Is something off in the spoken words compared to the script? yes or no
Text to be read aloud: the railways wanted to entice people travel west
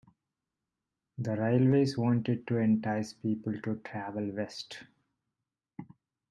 yes